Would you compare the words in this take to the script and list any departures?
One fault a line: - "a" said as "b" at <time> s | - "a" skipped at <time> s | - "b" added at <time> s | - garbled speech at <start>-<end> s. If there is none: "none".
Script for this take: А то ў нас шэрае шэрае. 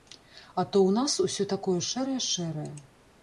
- "усё такое" added at 1.3 s